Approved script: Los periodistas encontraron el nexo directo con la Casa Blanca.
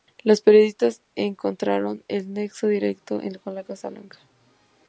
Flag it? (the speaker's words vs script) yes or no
no